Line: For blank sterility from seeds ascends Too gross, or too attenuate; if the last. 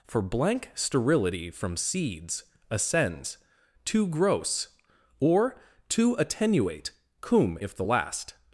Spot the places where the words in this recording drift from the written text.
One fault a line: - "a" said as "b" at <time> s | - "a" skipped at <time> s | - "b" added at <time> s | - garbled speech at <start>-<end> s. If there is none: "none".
- "cum" added at 7.2 s